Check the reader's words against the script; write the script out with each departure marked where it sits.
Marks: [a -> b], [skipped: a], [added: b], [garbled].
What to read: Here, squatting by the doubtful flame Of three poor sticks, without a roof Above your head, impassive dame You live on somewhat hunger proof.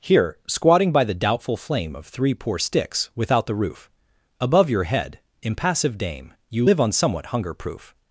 Here, squatting by the doubtful flame Of three poor sticks, without [a -> the] roof Above your head, impassive dame You live on somewhat hunger proof.